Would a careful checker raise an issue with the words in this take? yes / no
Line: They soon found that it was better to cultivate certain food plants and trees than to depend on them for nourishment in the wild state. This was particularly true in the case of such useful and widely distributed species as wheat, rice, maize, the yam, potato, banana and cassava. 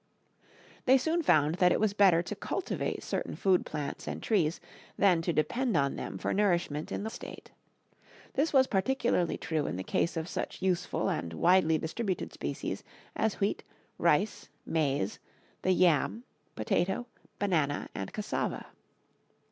yes